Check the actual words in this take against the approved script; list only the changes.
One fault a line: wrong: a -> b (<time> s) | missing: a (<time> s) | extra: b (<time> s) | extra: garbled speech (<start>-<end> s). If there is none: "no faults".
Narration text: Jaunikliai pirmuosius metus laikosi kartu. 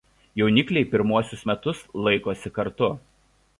no faults